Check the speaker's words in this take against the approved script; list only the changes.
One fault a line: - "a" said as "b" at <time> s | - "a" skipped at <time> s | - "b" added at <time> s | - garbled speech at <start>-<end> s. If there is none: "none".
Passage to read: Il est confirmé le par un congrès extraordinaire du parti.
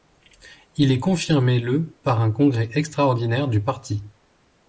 none